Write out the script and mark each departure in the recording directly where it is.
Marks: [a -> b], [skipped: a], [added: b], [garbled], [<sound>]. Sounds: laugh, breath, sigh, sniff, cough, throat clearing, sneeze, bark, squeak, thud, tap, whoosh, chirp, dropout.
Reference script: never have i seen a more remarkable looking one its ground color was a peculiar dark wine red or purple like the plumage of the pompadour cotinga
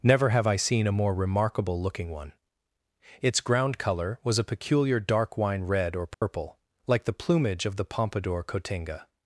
never have i seen a more remarkable looking one its ground color was a peculiar dark wine red or purple [dropout] like the plumage of the pompadour cotinga